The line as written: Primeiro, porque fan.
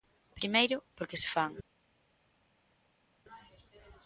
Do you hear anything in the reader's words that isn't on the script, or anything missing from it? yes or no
yes